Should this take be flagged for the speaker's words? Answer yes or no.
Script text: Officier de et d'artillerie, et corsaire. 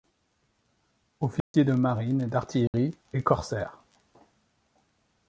yes